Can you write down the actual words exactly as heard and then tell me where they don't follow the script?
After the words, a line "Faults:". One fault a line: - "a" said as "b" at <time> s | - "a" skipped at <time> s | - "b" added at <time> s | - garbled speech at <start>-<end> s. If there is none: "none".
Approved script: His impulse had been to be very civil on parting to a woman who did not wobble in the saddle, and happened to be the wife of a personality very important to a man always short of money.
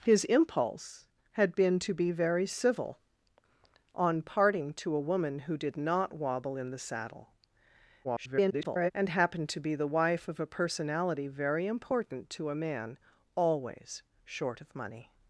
His impulse had been to be very civil on parting to a woman who did not wobble in the saddle, [garbled] and happened to be the wife of a personality very important to a man always short of money.
Faults:
- garbled speech at 8.0-8.9 s